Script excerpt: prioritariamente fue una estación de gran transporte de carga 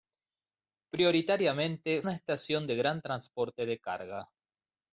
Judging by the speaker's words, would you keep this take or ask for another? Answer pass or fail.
fail